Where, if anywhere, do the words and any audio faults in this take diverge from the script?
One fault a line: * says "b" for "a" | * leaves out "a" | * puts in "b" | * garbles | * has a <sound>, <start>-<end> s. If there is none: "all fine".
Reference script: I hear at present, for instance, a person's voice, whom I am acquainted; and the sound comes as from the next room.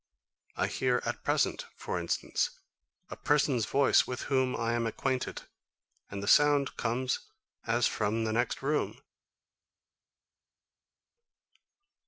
* puts in "with"